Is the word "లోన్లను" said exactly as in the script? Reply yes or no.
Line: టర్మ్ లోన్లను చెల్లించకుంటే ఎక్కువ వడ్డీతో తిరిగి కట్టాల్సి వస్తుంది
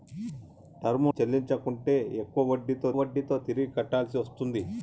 no